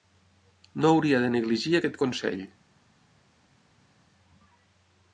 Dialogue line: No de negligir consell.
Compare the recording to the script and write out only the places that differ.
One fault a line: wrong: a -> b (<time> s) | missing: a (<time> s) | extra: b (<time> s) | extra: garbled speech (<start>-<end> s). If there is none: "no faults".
extra: hauria (0.9 s)
extra: aquest (1.8 s)